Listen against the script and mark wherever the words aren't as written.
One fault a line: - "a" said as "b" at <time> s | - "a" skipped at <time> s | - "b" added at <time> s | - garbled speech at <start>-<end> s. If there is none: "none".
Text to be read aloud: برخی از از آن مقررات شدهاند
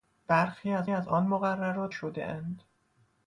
none